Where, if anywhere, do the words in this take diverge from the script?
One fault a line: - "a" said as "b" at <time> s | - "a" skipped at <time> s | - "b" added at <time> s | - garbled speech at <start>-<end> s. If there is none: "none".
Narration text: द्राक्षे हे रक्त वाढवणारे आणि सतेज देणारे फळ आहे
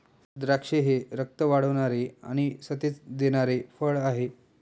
none